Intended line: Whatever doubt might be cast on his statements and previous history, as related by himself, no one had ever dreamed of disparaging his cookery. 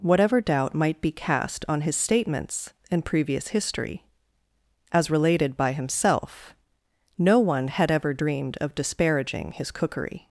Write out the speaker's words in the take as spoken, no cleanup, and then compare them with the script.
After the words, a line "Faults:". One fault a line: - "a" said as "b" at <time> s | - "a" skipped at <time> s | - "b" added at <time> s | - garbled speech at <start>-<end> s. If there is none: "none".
Whatever doubt might be cast on his statements and previous history, as related by himself, no one had ever dreamed of disparaging his cookery.
Faults:
none